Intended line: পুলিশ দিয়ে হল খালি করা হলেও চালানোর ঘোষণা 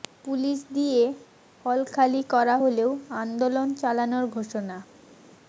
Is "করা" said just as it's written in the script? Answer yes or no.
yes